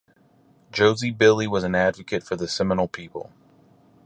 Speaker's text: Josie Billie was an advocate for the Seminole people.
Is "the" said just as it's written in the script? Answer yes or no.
yes